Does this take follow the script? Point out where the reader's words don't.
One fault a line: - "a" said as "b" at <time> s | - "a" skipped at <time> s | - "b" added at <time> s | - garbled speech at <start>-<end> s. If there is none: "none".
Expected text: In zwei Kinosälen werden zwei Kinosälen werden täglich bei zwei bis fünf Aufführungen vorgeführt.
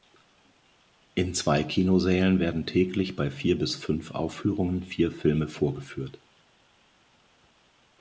- "zwei Kinosälen werden" skipped at 2.6 s
- "zwei" said as "vier" at 3.3 s
- "vier Filme" added at 4.8 s